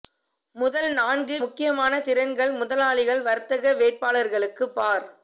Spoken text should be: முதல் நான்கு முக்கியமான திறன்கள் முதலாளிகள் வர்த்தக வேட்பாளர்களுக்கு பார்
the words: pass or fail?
pass